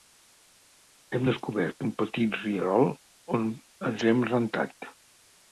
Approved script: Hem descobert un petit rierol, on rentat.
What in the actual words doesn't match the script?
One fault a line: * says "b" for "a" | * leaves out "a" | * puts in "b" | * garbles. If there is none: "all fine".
* puts in "ens hem"